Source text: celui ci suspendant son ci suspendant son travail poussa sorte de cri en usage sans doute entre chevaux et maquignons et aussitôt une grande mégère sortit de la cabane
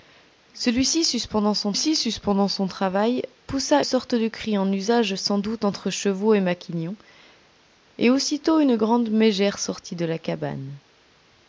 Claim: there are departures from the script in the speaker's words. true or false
false